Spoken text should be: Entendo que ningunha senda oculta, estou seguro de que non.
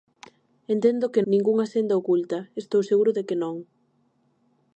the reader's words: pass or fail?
pass